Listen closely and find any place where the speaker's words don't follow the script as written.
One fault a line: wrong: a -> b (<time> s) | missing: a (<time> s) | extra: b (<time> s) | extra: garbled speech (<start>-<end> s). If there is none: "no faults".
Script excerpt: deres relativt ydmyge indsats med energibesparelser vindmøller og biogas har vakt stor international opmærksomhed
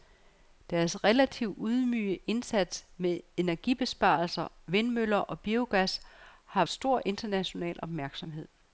missing: vakt (6.7 s)